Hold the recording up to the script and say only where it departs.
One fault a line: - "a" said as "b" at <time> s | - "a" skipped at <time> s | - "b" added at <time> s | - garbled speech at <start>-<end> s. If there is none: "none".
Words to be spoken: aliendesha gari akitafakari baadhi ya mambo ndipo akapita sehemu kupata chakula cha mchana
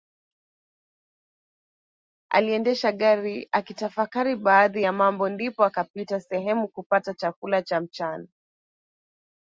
none